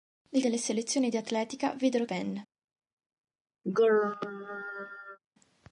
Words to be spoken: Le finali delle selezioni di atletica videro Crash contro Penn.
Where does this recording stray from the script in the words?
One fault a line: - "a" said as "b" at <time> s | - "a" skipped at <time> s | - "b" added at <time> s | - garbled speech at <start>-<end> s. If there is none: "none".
- "finali" skipped at 0.4 s
- "Crash contro" skipped at 2.1 s